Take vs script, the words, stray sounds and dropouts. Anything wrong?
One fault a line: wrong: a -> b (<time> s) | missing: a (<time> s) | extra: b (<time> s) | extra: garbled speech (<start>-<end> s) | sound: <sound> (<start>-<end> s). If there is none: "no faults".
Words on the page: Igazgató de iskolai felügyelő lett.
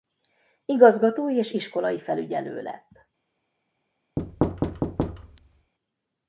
wrong: de -> és (1.3 s)
sound: thud (4.2-5.7 s)